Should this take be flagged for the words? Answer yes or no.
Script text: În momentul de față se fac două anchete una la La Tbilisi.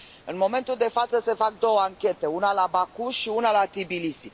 yes